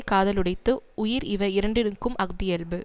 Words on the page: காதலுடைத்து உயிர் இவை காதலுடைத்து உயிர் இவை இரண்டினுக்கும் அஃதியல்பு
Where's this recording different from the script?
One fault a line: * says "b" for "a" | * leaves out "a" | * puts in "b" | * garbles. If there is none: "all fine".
* leaves out "காதலுடைத்து உயிர் இவை"